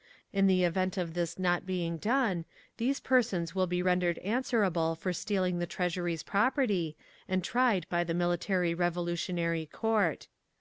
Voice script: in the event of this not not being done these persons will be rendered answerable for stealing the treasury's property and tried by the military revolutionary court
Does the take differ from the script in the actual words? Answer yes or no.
yes